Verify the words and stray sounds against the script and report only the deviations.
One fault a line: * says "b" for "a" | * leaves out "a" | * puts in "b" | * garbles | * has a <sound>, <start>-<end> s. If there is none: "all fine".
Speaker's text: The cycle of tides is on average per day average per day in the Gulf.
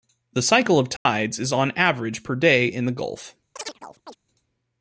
* has a dropout, 1.0-1.1 s
* leaves out "average per day"
* has a chirp, 3.6-4.2 s